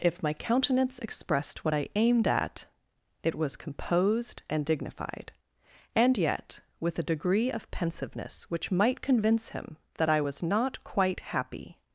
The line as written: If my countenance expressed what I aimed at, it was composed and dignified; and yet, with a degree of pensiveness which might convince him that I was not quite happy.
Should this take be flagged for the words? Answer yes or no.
no